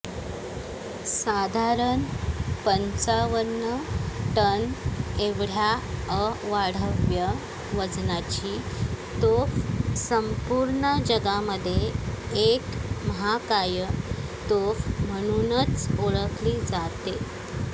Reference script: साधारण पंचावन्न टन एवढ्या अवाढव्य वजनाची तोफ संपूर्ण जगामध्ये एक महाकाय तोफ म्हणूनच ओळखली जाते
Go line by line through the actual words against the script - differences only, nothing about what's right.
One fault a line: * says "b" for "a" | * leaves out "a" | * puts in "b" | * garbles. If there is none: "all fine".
all fine